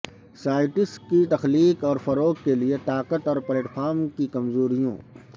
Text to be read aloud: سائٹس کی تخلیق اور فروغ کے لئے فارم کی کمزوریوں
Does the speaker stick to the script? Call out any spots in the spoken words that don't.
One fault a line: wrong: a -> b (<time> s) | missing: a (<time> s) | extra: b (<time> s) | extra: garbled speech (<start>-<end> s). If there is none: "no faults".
extra: طاقت اور پلیٹ (2.8 s)